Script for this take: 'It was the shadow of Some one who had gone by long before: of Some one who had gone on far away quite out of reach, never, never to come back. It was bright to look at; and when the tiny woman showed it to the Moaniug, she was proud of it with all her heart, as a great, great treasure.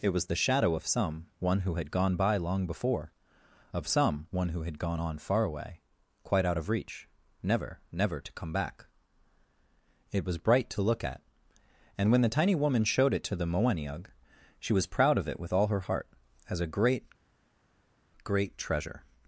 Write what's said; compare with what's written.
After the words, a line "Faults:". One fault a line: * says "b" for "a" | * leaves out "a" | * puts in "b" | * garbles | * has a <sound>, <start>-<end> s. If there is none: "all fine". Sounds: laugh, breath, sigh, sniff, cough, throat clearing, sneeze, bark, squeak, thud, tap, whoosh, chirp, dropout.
'It was the shadow of Some one who had gone by long before: of Some one who had gone on far away quite out of reach, never, never to come back. It was bright to look at; and when the tiny woman showed it to the Moaniug, she was proud of it with all her heart, as a great, great treasure.
Faults:
all fine